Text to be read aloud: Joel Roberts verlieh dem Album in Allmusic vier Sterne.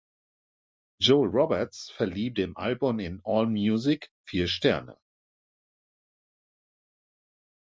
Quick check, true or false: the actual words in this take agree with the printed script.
true